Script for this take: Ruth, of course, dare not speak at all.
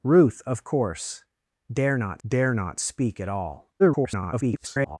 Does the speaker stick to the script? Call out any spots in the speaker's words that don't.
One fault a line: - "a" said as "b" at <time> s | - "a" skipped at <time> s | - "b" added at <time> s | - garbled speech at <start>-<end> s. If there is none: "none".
- "dare not" added at 2.3 s
- garbled speech at 3.8-5.0 s